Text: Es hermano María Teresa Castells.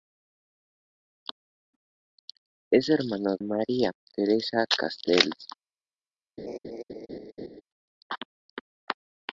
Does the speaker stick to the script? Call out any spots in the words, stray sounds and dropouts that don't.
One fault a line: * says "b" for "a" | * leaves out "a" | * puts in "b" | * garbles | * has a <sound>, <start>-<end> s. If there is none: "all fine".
* has a laugh, 6.4-7.6 s